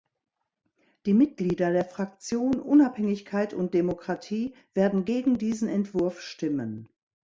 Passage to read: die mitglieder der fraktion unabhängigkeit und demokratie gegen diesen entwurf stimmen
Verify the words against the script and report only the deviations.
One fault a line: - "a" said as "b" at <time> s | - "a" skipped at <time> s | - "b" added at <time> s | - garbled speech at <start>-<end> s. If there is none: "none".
- "werden" added at 4.7 s